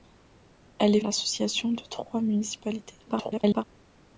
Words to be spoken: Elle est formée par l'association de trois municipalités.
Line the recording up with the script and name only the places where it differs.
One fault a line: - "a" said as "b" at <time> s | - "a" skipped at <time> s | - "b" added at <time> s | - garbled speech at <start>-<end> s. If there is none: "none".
- "formée par" skipped at 1.0 s
- garbled speech at 3.1-3.6 s